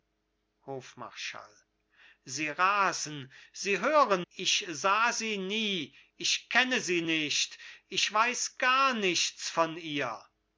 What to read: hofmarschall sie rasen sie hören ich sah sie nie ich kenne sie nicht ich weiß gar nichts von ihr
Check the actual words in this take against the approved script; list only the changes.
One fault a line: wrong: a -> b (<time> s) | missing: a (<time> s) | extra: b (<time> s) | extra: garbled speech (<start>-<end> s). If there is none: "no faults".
no faults